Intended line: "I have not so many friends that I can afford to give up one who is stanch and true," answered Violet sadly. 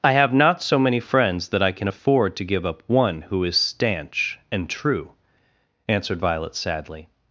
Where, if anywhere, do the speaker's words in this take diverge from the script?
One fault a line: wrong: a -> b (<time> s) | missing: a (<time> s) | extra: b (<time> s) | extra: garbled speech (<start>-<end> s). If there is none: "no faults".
no faults